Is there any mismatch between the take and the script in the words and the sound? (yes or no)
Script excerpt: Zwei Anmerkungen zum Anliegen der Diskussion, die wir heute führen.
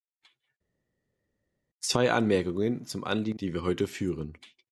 yes